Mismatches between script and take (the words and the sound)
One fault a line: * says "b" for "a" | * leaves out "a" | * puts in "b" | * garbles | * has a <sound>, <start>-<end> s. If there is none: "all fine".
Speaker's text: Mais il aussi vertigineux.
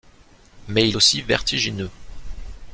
all fine